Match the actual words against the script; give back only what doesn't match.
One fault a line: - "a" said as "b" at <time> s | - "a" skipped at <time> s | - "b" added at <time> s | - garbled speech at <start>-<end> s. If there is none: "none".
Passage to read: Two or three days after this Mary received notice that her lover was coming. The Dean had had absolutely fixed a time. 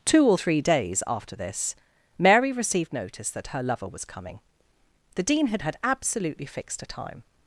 none